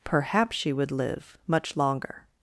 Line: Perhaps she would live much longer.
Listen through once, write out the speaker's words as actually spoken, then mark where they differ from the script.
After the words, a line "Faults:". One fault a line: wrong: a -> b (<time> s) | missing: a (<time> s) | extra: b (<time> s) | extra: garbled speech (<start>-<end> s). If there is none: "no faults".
Perhaps she would live much longer.
Faults:
no faults